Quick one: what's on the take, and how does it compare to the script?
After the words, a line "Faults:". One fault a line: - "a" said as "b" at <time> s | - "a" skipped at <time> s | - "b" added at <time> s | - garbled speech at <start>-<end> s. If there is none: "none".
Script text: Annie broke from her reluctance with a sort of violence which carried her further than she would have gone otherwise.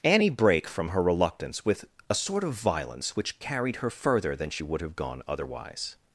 Annie brake from her reluctance with a sort of violence which carried her further than she would have gone otherwise.
Faults:
- "broke" said as "brake" at 0.3 s